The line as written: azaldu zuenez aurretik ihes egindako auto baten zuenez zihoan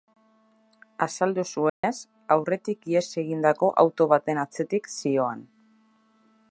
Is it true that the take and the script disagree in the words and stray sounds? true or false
true